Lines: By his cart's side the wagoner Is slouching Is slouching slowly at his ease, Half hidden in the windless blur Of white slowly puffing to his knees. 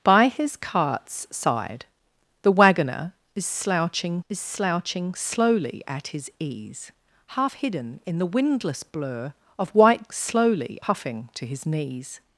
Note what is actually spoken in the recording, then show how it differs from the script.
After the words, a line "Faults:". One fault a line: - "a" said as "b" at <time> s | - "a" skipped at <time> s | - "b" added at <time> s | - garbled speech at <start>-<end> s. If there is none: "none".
By his cart's side the wagoner Is slouching Is slouching slowly at his ease, Half hidden in the windless blur Of white slowly puffing to his knees.
Faults:
none